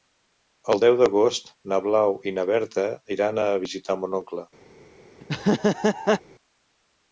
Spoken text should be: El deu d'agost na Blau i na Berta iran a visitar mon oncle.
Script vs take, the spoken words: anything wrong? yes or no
no